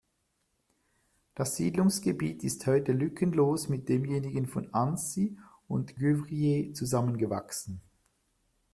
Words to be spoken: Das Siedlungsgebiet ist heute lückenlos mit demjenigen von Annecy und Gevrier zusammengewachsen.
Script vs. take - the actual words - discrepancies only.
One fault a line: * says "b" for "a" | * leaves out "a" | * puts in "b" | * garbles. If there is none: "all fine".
all fine